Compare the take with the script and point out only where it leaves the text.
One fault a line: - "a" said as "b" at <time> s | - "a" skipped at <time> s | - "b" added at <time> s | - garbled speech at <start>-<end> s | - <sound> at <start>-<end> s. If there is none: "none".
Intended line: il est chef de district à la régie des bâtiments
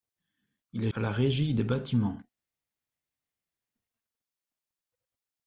- "chef de district" skipped at 0.9 s